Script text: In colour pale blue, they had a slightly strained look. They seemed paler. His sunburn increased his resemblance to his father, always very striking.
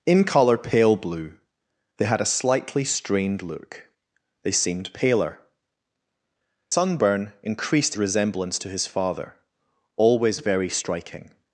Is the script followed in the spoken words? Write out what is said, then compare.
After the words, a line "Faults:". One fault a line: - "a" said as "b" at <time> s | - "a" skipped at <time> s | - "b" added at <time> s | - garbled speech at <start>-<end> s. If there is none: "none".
In colour pale blue, they had a slightly strained look. They seemed paler. Sunburn increased resemblance to his father, always very striking.
Faults:
- "His" skipped at 5.4 s
- "his" skipped at 7.9 s